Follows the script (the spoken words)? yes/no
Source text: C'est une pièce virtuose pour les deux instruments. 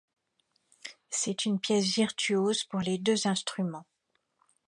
yes